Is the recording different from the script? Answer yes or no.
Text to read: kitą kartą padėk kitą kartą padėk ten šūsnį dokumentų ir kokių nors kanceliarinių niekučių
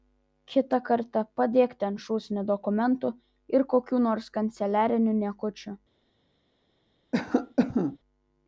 yes